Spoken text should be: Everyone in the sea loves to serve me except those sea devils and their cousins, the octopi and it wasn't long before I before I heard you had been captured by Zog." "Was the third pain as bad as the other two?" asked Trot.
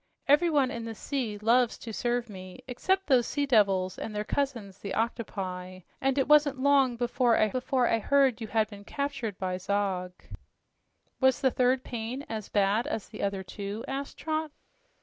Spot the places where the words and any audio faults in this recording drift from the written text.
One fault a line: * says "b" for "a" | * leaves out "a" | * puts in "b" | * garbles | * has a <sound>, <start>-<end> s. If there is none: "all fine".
all fine